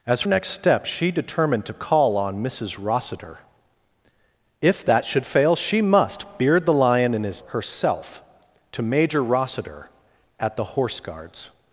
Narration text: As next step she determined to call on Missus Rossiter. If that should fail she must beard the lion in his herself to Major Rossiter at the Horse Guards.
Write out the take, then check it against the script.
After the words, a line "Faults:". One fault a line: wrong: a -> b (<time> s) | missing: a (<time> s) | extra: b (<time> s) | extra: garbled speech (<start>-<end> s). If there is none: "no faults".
As next step she determined to call on Missus Rossiter. If that should fail she must beard the lion in his herself to Major Rossiter at the Horse Guards.
Faults:
no faults